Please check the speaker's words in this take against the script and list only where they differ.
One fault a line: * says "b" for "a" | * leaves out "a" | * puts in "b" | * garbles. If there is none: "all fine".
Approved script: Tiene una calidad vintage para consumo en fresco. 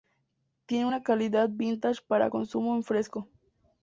all fine